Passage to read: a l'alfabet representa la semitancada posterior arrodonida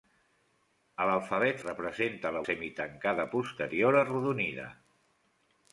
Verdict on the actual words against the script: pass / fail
pass